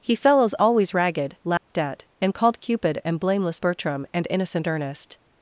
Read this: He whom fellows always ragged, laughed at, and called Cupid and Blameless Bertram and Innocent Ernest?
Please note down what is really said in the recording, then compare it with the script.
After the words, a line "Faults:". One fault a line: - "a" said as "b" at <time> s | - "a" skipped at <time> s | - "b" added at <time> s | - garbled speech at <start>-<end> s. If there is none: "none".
He fellows always ragged, laughed at, and called Cupid and Blameless Bertram and Innocent Ernest?
Faults:
- "whom" skipped at 0.1 s